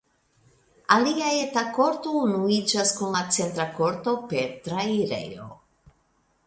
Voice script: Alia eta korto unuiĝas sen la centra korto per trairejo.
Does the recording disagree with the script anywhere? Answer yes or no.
yes